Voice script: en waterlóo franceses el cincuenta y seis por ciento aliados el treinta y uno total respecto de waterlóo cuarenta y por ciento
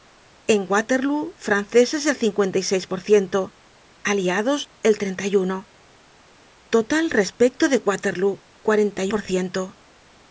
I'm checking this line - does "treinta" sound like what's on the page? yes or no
yes